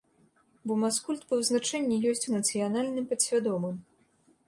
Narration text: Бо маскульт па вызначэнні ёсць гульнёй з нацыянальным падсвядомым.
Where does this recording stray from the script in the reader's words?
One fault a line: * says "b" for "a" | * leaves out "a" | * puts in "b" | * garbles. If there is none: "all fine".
* leaves out "гульнёй"